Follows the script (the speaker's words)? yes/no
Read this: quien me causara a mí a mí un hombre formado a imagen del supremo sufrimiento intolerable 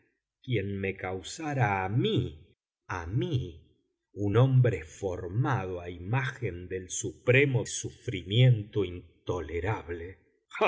yes